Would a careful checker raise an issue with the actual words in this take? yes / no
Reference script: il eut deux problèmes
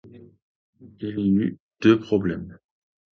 yes